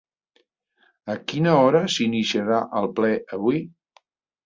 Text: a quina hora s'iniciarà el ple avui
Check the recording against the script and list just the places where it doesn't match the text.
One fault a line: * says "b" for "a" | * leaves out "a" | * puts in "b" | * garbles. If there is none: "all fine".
all fine